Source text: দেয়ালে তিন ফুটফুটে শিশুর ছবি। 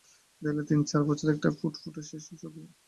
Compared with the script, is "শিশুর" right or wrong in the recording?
right